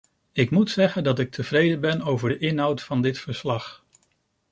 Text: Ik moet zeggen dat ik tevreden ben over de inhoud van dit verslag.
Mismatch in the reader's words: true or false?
false